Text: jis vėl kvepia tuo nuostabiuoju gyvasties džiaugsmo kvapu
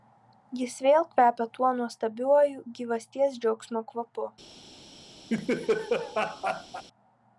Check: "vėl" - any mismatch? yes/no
no